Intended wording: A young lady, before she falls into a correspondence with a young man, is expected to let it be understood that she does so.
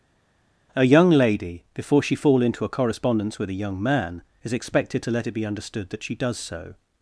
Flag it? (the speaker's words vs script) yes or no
yes